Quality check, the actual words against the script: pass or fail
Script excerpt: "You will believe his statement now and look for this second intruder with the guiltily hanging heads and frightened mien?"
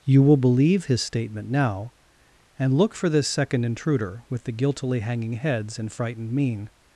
pass